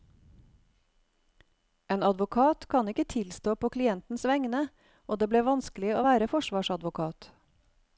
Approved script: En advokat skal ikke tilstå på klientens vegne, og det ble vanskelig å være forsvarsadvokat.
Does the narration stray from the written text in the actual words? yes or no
yes